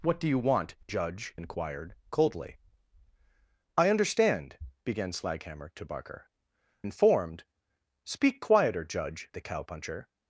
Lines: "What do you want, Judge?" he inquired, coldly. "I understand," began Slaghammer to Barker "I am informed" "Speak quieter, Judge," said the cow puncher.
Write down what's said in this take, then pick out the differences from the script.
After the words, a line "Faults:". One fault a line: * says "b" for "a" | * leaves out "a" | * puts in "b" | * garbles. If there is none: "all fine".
"What do you want, Judge?" inquired, coldly. "I understand," began Slaghammer to Barker "informed" "Speak quieter, Judge," the cow puncher.
Faults:
* leaves out "he"
* leaves out "I am"
* leaves out "said"